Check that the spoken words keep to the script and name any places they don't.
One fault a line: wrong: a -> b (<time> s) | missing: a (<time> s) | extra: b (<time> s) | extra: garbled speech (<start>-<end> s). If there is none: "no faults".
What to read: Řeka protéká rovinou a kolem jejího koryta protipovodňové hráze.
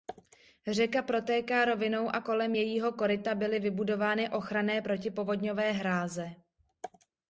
extra: byly vybudovány ochranné (3.4 s)